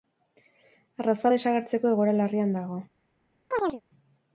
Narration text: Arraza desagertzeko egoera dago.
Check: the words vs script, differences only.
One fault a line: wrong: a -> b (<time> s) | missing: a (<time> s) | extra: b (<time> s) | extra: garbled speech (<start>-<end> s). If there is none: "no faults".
extra: larrian (2.2 s)